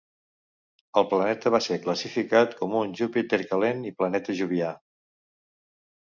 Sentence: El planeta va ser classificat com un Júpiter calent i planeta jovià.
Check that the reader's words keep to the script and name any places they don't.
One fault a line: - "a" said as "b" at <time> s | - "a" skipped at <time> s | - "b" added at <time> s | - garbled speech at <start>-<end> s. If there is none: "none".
none